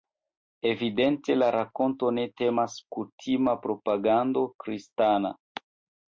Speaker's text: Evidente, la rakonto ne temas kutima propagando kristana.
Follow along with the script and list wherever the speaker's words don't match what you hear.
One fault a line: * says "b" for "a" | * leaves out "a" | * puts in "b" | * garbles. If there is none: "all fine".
all fine